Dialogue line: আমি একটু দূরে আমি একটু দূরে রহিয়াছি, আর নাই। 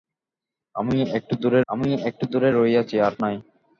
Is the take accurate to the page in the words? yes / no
yes